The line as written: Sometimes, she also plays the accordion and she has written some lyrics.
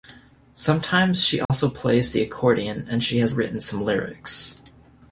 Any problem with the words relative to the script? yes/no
no